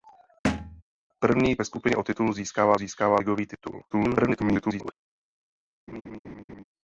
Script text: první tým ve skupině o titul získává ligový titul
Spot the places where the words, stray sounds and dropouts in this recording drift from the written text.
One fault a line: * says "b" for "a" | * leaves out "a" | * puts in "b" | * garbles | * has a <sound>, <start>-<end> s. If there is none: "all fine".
* has a thud, 0.4-0.8 s
* leaves out "tým"
* puts in "získává"
* garbles
* has a laugh, 5.9-6.6 s